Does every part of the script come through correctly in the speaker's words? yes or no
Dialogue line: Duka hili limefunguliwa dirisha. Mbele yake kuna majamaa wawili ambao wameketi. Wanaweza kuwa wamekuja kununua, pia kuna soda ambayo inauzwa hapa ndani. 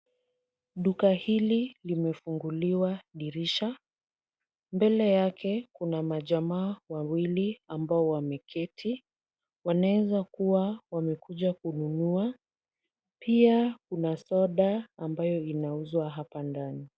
yes